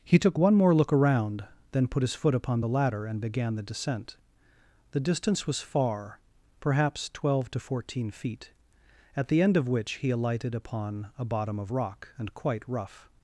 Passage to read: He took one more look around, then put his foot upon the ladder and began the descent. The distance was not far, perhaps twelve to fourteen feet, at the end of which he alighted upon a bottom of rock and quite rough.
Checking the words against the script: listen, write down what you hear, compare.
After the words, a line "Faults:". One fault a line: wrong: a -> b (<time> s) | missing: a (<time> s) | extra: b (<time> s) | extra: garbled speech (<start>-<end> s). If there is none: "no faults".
He took one more look around, then put his foot upon the ladder and began the descent. The distance was far, perhaps twelve to fourteen feet, at the end of which he alighted upon a bottom of rock and quite rough.
Faults:
missing: not (5.6 s)